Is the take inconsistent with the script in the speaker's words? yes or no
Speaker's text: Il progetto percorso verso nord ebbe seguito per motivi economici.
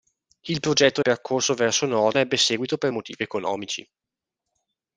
no